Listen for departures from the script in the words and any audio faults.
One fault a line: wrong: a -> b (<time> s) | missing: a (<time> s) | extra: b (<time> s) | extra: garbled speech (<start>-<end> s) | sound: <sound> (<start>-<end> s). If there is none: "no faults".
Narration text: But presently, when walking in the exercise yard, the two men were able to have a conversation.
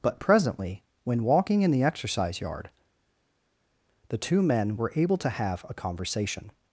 no faults